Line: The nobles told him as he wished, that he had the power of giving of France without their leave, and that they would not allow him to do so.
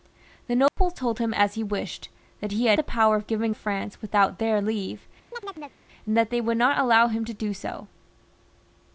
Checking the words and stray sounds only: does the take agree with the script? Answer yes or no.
no